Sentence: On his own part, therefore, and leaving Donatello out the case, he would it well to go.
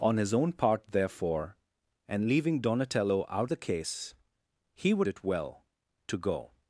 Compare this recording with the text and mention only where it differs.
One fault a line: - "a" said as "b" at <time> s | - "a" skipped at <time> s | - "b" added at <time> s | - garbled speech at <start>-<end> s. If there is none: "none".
none